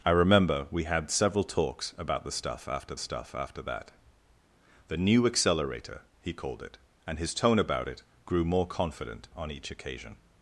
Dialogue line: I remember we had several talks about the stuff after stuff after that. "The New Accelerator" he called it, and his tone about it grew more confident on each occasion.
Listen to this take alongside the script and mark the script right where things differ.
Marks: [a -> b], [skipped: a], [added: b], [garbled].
I remember we had several talks about the stuff after stuff after that. "The New Accelerator" he called it, and his tone about it grew more confident on each occasion.